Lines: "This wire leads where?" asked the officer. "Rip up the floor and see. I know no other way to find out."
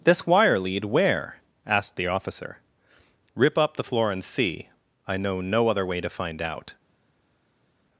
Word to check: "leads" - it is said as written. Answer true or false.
false